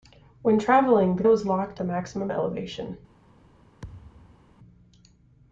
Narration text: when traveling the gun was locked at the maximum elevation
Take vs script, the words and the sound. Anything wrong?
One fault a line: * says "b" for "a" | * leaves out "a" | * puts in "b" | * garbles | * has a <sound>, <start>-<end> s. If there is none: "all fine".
* leaves out "gun"
* leaves out "at"
* has a thud, 3.8-4.5 s